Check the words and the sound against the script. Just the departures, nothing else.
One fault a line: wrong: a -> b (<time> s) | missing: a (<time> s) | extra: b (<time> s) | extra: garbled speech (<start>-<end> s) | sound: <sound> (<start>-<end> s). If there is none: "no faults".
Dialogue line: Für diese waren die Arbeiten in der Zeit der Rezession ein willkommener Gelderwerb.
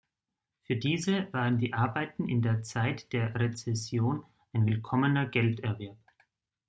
no faults